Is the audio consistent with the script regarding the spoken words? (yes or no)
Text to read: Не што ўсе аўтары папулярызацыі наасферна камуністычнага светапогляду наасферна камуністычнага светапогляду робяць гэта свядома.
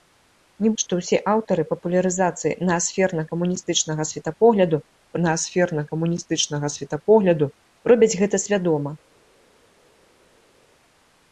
yes